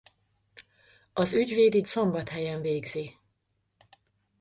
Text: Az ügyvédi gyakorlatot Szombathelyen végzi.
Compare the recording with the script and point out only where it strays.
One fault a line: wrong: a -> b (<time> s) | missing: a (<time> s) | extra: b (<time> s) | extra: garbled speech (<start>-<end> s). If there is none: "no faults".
missing: gyakorlatot (1.8 s)